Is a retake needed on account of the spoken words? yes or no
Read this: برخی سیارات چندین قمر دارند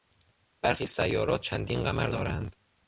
no